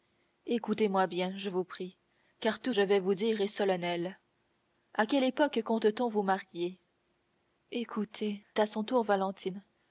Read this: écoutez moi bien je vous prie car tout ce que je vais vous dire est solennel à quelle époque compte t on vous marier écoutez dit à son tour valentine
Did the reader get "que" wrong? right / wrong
wrong